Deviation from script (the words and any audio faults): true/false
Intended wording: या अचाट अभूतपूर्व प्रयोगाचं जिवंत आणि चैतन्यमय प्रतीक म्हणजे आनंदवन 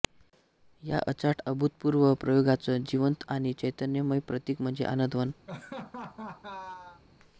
true